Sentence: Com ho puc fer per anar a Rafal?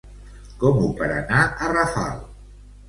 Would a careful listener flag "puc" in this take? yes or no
yes